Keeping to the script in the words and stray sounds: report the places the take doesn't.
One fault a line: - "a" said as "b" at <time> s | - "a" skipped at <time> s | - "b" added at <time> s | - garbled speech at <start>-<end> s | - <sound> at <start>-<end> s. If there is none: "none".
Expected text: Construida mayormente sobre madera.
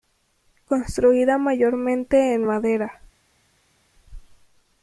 - "sobre" said as "en" at 2.3 s